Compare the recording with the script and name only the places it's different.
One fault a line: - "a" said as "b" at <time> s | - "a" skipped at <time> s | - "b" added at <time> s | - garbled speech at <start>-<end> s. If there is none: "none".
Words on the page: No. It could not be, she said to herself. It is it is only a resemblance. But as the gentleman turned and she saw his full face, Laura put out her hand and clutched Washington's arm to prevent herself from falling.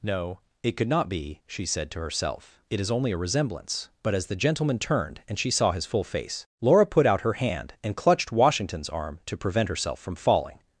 - "it is" skipped at 2.9 s